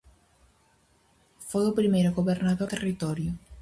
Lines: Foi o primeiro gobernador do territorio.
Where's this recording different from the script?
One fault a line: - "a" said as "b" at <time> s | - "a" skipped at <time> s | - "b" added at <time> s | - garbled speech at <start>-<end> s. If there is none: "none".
- "do" skipped at 2.7 s